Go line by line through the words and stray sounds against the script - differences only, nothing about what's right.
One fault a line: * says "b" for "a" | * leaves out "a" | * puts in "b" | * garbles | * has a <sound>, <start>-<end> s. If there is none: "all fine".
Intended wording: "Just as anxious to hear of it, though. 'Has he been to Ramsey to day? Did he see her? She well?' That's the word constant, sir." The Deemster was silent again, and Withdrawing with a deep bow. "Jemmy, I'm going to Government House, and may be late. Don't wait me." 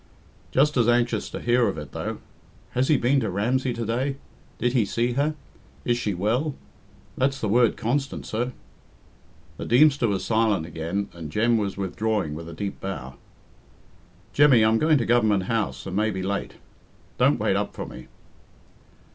* puts in "Is"
* puts in "Jem was"
* puts in "up for"